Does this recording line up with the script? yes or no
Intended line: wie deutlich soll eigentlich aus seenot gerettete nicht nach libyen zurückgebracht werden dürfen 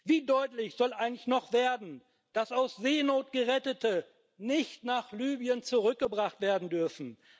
no